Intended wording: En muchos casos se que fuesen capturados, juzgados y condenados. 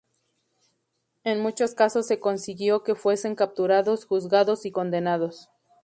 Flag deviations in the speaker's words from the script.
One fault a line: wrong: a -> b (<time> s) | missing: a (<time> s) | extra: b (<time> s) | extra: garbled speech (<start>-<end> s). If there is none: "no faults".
extra: consiguió (2.2 s)